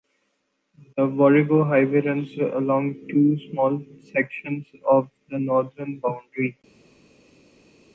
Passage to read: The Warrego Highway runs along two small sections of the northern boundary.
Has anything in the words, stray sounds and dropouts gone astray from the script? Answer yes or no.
no